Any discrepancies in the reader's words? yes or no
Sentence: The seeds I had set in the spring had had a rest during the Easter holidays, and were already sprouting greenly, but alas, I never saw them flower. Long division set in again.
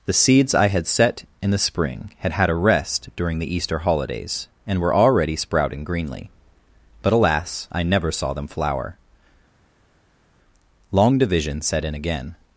no